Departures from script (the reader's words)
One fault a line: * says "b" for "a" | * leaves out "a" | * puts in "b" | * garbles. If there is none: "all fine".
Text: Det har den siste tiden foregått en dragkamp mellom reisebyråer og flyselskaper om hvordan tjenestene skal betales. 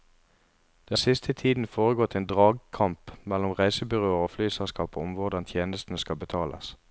* leaves out "har den"